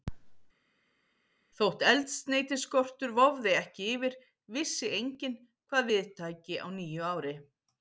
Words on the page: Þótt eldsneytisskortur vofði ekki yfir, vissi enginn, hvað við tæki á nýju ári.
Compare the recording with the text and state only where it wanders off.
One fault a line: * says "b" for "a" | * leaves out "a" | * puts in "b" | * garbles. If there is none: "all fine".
all fine